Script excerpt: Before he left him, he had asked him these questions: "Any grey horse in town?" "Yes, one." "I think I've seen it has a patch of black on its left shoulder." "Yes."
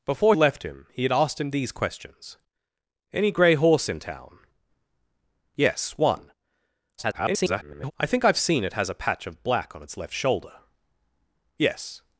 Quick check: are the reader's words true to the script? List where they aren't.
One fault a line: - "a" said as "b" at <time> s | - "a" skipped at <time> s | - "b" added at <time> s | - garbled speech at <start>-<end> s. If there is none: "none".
- "he" skipped at 0.3 s
- garbled speech at 7.0-7.9 s